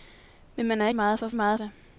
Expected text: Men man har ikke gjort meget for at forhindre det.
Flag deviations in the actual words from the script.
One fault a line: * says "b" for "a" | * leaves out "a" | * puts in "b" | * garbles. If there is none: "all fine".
* leaves out "ikke gjort"
* says "meget" for "forhindre"